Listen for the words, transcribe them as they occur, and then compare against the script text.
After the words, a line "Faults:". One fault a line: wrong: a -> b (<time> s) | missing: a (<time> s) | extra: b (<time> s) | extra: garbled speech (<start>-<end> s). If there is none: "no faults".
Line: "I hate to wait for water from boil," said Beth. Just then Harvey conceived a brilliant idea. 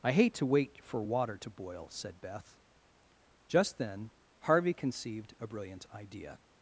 "I hate to wait for water to boil," said Beth. Just then Harvey conceived a brilliant idea.
Faults:
wrong: from -> to (1.4 s)